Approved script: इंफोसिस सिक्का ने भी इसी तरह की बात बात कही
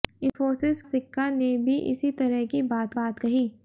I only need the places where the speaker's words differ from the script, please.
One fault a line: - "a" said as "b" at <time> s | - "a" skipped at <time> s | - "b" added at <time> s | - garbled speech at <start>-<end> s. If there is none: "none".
none